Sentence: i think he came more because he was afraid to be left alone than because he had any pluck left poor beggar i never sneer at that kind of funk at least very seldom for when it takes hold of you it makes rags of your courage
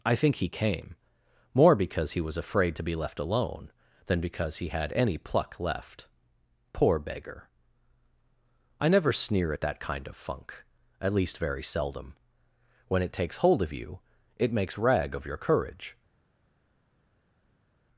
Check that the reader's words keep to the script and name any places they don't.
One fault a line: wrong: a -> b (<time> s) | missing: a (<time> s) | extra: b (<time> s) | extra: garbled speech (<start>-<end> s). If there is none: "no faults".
missing: for (12.1 s)
wrong: rags -> rag (14.8 s)